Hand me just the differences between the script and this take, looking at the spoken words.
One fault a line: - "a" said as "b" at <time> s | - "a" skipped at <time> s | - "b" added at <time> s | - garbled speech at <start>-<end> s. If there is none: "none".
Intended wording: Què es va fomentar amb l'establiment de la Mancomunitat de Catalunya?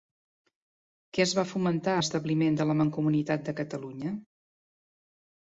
- "amb" skipped at 1.9 s